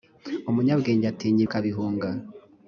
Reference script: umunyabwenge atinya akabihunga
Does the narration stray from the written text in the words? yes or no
no